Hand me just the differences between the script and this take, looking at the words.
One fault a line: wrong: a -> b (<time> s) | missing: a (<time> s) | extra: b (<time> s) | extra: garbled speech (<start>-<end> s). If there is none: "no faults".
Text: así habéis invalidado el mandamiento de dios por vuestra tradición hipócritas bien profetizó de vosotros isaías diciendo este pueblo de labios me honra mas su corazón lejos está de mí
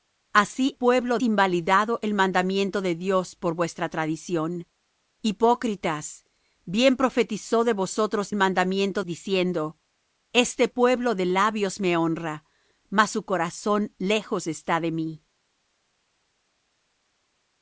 wrong: habéis -> pueblo (0.7 s)
wrong: isaías -> mandamiento (8.4 s)